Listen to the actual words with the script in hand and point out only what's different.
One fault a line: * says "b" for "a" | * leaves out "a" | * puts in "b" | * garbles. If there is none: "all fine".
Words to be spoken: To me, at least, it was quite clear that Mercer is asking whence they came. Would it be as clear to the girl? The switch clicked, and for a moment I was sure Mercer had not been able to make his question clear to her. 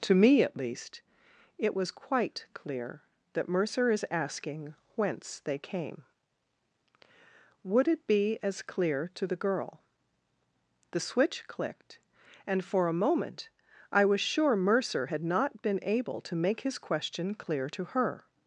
all fine